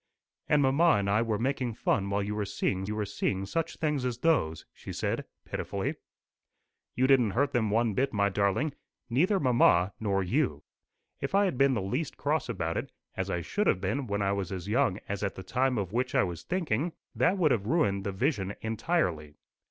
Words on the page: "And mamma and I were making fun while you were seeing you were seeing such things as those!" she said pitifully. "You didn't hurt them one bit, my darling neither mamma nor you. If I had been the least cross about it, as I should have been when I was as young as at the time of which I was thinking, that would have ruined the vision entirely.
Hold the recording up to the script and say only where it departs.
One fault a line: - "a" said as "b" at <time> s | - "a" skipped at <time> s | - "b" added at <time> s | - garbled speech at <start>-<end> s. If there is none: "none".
none